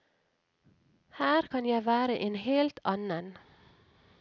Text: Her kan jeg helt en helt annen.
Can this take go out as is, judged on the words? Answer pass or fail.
fail